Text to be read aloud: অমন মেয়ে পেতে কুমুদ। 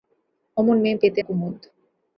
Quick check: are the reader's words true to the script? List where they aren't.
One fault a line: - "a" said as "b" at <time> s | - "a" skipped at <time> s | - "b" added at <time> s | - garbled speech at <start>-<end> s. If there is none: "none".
none